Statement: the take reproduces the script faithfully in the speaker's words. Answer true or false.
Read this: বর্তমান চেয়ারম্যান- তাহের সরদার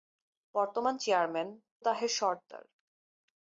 true